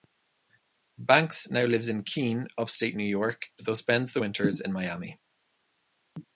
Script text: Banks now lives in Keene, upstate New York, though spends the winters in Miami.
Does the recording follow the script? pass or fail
pass